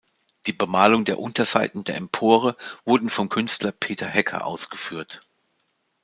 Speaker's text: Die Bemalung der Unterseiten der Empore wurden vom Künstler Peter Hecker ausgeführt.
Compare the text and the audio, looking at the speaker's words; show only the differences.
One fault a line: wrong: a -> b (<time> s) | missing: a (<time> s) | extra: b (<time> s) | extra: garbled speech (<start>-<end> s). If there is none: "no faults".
no faults